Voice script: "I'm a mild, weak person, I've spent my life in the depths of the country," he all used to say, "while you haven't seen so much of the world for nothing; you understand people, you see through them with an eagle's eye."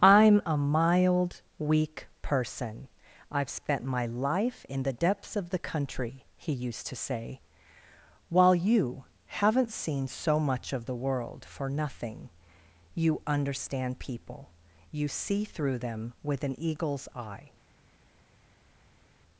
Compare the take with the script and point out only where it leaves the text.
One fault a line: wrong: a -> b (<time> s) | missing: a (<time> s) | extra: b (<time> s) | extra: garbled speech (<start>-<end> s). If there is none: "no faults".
missing: all (6.5 s)